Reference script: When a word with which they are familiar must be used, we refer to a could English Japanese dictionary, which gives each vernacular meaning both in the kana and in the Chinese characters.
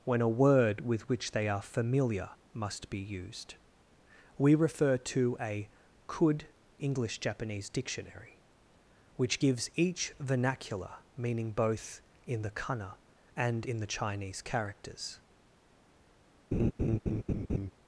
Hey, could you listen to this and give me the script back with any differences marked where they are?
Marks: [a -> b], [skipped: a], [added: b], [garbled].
When a word with which they are familiar must be used, we refer to a could English Japanese dictionary, which gives each vernacular meaning both in the kana and in the Chinese characters.